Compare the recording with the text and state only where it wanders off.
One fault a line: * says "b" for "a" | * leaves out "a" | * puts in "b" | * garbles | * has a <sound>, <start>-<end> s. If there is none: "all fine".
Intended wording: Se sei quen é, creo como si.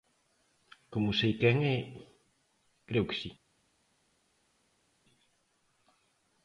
* says "Como" for "Se"
* says "que" for "como"